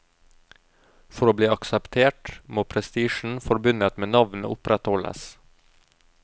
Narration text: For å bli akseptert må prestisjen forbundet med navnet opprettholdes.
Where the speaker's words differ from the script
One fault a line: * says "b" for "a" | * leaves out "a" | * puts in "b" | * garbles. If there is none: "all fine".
all fine